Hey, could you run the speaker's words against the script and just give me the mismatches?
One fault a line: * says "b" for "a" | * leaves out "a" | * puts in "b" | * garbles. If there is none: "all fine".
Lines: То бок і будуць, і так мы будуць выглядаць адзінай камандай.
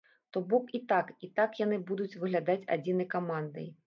* says "так" for "будуць"
* says "яны" for "мы"